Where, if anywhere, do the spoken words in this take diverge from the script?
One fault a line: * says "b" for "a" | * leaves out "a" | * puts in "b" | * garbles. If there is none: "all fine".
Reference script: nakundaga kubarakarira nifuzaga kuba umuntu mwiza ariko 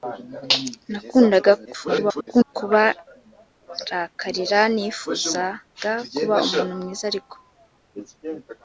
* garbles